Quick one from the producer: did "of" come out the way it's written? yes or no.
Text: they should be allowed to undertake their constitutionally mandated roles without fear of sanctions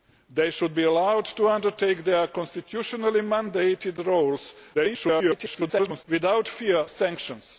no